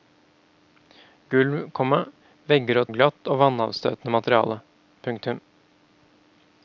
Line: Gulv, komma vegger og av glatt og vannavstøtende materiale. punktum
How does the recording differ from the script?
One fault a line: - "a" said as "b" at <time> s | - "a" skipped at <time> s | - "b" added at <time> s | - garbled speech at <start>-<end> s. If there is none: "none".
none